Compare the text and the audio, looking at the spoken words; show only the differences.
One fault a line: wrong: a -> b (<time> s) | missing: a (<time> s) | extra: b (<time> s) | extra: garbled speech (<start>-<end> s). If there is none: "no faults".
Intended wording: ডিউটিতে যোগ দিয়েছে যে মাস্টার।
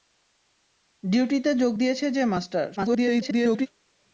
extra: garbled speech (2.8-3.7 s)